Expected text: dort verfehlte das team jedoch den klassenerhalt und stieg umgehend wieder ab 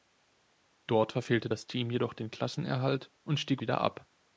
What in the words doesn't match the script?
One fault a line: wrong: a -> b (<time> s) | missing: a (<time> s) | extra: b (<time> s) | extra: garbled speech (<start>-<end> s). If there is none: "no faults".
missing: umgehend (3.6 s)